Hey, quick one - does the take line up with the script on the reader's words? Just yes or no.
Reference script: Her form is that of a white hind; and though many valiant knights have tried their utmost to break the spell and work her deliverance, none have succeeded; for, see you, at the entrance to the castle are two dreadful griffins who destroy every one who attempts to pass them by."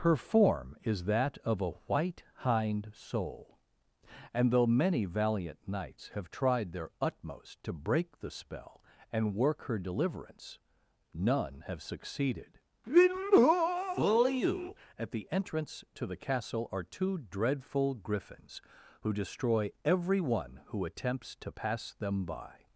no